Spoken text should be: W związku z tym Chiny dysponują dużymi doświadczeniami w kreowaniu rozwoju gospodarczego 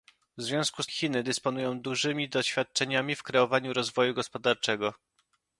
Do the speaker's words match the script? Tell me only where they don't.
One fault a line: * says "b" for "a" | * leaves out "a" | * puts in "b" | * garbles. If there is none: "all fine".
* leaves out "tym"